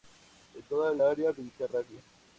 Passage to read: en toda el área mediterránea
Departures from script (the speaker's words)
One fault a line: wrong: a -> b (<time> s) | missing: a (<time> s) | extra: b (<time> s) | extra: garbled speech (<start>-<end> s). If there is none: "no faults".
no faults